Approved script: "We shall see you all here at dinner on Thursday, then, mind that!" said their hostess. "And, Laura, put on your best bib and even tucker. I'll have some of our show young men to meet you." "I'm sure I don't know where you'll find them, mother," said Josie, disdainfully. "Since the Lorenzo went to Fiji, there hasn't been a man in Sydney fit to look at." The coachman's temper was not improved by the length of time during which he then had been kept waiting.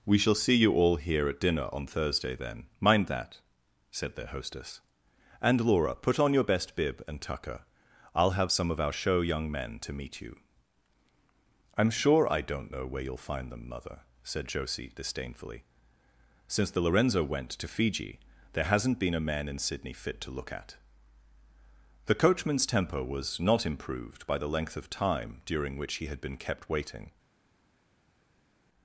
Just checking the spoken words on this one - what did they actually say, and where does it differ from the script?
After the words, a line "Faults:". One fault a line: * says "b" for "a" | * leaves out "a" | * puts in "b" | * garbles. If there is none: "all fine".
"We shall see you all here at dinner on Thursday, then, mind that!" said their hostess. "And, Laura, put on your best bib and tucker. I'll have some of our show young men to meet you." "I'm sure I don't know where you'll find them, mother," said Josie, disdainfully. "Since the Lorenzo went to Fiji, there hasn't been a man in Sydney fit to look at." The coachman's temper was not improved by the length of time during which he had been kept waiting.
Faults:
* leaves out "even"
* leaves out "then"